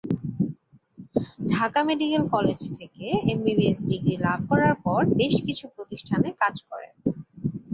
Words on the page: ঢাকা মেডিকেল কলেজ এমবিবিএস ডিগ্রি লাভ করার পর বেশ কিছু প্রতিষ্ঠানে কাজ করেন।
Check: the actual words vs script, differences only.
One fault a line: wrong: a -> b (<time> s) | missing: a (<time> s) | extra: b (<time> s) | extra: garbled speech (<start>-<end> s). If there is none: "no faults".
extra: থেকে (2.8 s)